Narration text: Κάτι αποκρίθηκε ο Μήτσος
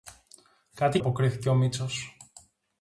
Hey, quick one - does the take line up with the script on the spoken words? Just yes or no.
yes